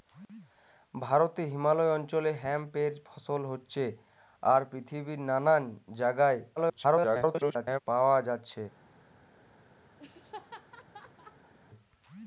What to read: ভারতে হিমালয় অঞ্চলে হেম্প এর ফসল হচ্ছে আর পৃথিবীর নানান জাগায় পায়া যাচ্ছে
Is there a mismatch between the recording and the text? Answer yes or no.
yes